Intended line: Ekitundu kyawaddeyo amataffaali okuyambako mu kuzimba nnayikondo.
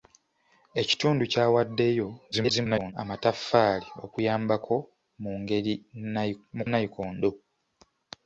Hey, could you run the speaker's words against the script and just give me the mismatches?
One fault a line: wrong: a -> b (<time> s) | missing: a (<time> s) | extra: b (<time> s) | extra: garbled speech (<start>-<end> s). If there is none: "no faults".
extra: garbled speech (2.3-2.9 s)
missing: kuzimba (6.6 s)